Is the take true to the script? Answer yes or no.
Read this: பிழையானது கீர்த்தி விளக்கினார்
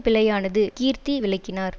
yes